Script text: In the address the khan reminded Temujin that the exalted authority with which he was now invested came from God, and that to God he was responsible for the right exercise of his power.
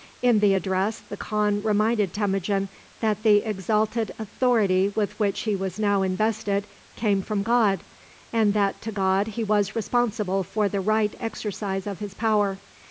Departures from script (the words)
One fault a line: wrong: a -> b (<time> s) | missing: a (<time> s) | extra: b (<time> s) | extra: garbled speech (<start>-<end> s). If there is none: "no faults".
no faults